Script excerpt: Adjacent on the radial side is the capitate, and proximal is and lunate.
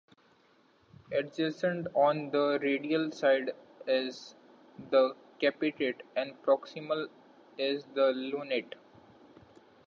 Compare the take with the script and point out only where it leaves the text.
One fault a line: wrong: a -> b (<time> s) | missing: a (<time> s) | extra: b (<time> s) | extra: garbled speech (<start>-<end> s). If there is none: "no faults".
wrong: and -> the (7.9 s)